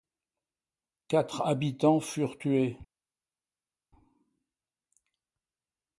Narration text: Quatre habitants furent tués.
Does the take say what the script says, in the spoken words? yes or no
yes